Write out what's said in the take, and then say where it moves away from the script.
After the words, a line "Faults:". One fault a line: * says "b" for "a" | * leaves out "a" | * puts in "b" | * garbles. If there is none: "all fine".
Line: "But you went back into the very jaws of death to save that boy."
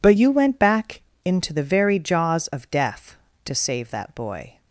"But you went back into the very jaws of death to save that boy."
Faults:
all fine